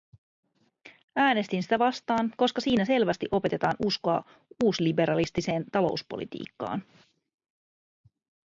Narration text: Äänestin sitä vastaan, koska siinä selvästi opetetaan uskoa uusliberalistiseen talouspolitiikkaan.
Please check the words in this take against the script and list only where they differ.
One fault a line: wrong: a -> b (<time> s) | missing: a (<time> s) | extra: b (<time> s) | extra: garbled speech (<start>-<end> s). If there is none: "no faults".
no faults